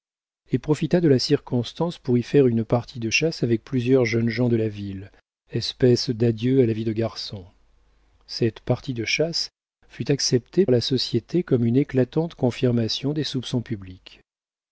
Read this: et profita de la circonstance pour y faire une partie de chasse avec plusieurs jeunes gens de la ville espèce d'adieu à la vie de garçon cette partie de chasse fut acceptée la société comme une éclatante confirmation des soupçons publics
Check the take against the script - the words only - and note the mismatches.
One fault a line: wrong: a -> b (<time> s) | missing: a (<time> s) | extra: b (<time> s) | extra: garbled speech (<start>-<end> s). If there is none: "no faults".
no faults